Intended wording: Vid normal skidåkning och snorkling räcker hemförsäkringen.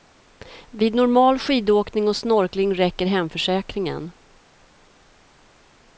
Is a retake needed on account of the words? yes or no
no